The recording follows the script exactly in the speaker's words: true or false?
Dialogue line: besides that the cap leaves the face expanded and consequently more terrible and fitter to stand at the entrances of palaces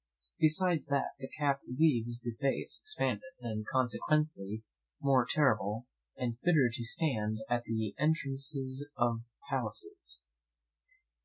true